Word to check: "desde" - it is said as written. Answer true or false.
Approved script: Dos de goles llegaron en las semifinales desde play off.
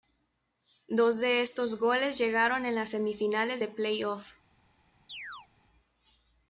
false